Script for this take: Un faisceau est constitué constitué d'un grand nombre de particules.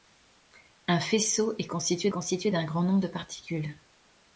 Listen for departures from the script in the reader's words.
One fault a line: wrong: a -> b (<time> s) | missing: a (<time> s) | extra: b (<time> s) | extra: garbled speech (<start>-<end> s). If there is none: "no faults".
no faults